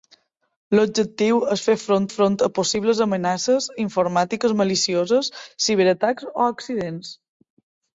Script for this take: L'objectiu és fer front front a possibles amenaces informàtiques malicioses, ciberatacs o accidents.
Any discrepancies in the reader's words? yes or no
no